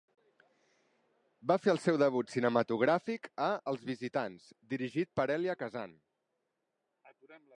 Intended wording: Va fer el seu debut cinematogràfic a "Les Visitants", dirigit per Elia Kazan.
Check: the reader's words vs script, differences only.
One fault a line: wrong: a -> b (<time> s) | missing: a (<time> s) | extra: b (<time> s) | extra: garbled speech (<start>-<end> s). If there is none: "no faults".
wrong: Les -> Els (3.7 s)